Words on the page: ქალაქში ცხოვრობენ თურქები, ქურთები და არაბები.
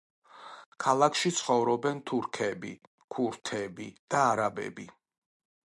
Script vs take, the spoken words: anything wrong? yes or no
no